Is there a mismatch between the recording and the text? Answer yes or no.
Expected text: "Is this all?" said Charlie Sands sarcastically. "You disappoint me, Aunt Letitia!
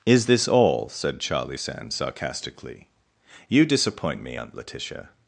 no